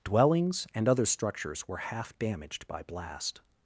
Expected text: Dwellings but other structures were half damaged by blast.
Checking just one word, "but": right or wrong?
wrong